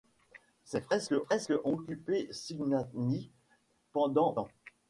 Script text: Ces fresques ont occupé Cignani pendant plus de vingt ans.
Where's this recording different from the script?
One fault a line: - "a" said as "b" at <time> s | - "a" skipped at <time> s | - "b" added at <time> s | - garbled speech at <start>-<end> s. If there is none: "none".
- "fresques" added at 1.2 s
- "plus de vingt" skipped at 4.3 s